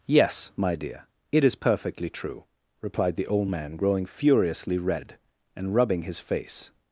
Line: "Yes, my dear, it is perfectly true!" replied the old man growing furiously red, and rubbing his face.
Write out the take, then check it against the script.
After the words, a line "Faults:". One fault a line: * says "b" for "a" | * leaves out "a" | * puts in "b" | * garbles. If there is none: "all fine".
"Yes, my dear, it is perfectly true!" replied the old man growing furiously red, and rubbing his face.
Faults:
all fine